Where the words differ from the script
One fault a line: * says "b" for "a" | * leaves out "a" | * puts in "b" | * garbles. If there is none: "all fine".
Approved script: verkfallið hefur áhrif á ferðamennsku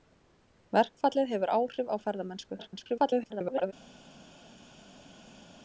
* garbles